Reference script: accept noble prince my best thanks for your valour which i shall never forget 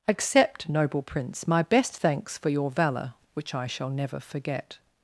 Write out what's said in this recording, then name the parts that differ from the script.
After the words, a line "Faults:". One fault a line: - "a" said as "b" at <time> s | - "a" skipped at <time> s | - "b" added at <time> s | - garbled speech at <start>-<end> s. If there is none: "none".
accept noble prince my best thanks for your valour which i shall never forget
Faults:
none